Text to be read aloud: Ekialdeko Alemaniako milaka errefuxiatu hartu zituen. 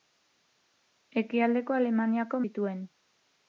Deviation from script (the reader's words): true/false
true